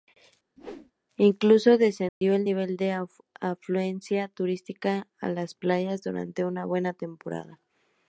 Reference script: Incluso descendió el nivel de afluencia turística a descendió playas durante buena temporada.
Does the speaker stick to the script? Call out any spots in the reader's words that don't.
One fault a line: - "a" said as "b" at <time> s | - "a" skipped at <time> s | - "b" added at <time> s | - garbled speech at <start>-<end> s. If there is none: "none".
- "descendió" said as "las" at 5.3 s
- "una" added at 6.4 s